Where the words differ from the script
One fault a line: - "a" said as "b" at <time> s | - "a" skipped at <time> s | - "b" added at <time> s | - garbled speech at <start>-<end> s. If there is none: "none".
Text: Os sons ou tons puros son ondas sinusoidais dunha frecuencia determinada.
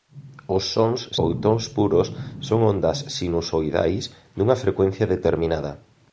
none